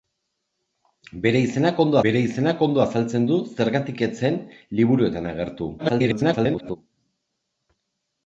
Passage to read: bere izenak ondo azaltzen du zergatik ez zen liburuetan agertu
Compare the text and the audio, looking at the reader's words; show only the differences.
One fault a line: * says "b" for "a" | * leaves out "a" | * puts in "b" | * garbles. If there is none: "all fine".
* puts in "bere izenak ondo"
* garbles